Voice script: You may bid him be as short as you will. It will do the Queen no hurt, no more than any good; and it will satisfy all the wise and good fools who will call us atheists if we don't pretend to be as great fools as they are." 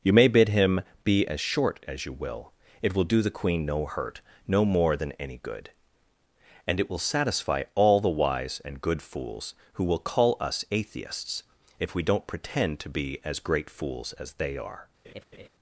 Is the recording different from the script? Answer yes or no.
no